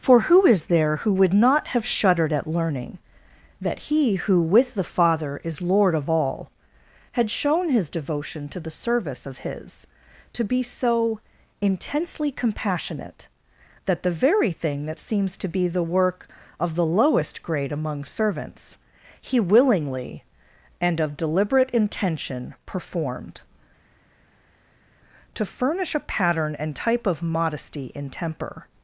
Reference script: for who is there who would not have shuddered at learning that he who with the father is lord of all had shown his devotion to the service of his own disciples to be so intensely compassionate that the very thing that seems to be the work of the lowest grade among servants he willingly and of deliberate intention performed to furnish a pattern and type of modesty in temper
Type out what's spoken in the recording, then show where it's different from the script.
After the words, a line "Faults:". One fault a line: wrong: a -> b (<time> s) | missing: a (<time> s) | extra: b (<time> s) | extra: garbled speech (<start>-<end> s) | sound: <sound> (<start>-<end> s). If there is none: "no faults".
for who is there who would not have shuddered at learning that he who with the father is lord of all had shown his devotion to the service of his to be so intensely compassionate that the very thing that seems to be the work of the lowest grade among servants he willingly and of deliberate intention performed to furnish a pattern and type of modesty in temper
Faults:
missing: own disciples (9.8 s)